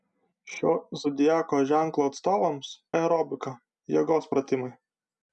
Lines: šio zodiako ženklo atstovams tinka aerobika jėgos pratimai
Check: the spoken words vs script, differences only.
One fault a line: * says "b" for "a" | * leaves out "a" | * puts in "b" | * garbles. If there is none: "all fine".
* leaves out "tinka"